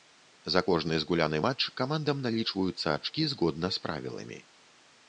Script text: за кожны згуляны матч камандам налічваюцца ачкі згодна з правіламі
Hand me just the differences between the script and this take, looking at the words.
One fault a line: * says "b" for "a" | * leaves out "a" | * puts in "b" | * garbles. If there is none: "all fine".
all fine